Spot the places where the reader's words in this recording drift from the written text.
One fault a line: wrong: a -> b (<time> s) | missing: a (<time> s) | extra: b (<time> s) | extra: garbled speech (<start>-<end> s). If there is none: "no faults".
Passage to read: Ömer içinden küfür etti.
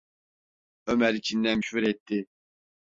no faults